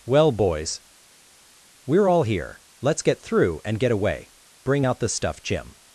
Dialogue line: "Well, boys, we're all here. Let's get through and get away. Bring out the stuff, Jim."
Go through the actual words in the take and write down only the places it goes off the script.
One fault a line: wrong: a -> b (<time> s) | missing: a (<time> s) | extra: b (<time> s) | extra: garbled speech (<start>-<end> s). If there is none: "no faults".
no faults